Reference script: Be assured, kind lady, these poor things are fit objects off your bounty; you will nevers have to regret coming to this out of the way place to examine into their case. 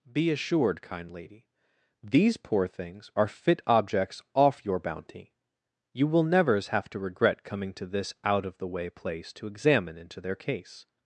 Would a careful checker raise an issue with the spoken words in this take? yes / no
no